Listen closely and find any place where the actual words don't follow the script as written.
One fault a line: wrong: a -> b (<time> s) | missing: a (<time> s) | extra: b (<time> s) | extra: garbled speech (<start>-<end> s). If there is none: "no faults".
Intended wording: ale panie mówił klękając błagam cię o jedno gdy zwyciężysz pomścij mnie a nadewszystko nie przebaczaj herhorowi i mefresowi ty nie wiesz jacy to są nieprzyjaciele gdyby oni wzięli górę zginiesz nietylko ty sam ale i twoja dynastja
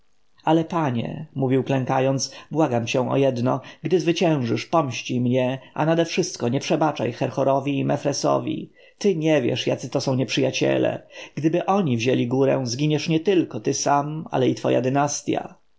no faults